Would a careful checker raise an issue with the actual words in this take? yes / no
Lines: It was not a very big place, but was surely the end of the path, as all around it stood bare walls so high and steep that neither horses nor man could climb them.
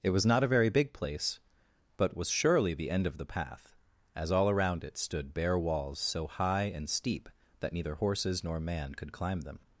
no